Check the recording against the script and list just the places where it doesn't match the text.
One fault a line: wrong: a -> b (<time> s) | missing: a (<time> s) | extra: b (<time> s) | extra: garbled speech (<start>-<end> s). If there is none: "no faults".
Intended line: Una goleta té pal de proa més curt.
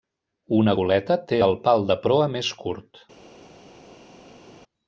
extra: el (1.4 s)